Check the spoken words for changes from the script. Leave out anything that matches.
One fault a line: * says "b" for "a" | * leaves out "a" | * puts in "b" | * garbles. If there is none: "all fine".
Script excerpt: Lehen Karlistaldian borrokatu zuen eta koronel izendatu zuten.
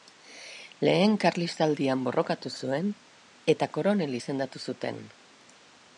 all fine